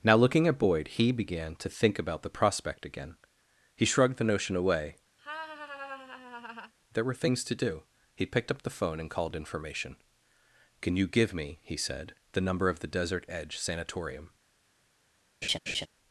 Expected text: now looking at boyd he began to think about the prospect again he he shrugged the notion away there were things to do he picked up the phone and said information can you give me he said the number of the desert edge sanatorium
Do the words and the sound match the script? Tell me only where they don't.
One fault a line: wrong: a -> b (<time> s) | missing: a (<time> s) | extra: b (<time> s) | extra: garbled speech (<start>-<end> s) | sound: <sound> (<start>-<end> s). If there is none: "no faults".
missing: he (3.9 s)
sound: laugh (5.2-6.7 s)
wrong: said -> called (9.1 s)
sound: laugh (15.4-15.9 s)